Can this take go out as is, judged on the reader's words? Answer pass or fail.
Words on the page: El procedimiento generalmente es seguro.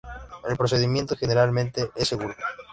pass